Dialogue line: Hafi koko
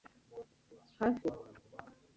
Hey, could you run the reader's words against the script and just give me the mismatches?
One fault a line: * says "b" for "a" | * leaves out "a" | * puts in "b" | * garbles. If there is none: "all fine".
all fine